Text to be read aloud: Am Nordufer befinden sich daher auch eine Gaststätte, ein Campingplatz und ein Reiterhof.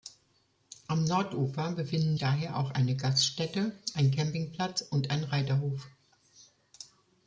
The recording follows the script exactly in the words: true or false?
false